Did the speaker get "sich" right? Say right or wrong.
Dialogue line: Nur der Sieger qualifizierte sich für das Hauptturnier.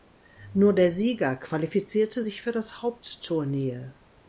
right